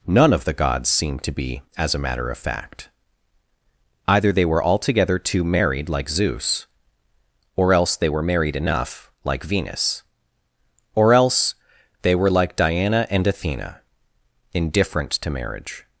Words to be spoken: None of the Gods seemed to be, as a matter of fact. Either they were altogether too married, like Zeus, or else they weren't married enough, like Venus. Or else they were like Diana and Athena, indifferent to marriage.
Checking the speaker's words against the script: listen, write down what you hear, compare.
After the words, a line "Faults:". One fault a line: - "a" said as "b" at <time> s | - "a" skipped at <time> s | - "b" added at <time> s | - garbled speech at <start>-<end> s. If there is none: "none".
None of the Gods seemed to be, as a matter of fact. Either they were altogether too married, like Zeus, or else they were married enough, like Venus. Or else they were like Diana and Athena, indifferent to marriage.
Faults:
- "weren't" said as "were" at 8.1 s